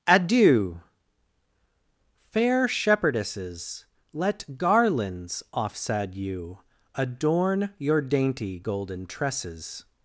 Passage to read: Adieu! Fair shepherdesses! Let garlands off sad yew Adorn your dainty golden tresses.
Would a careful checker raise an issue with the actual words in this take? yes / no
no